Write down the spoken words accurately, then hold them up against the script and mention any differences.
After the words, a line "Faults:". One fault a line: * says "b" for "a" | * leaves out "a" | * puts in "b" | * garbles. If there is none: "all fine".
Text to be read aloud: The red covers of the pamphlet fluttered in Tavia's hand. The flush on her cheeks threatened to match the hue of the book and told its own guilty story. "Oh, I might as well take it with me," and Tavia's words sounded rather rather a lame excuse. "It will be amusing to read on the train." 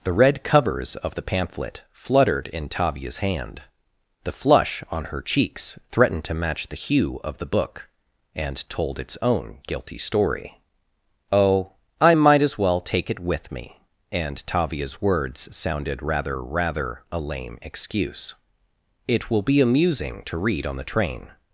The red covers of the pamphlet fluttered in Tavia's hand. The flush on her cheeks threatened to match the hue of the book and told its own guilty story. "Oh, I might as well take it with me," and Tavia's words sounded rather rather a lame excuse. "It will be amusing to read on the train."
Faults:
all fine